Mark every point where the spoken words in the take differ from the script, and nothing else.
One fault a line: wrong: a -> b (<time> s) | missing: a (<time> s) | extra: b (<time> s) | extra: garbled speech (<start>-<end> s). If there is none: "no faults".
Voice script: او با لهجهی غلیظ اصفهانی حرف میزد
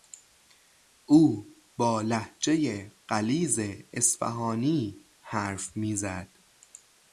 no faults